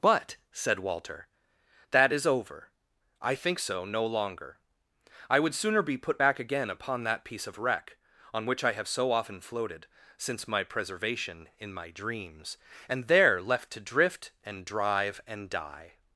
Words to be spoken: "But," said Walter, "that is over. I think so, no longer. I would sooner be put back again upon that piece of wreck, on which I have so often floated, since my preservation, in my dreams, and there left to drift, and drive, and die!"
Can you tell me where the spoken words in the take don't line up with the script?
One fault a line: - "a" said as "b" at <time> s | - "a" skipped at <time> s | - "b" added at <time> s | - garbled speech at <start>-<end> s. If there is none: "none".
none